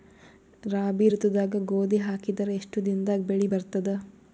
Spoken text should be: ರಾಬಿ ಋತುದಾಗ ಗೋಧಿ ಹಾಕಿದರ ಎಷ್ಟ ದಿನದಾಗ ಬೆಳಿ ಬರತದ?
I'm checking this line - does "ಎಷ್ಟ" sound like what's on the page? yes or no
yes